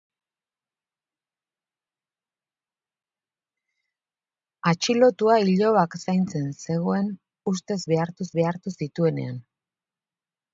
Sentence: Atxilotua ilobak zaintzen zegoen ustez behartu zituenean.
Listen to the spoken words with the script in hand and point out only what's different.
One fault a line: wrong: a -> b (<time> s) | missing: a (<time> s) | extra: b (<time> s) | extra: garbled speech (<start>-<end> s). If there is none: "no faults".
extra: behartu (8.4 s)